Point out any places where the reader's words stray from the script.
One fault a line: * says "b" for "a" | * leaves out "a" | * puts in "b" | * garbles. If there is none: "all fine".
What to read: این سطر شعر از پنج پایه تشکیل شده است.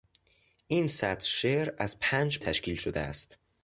* leaves out "پایه"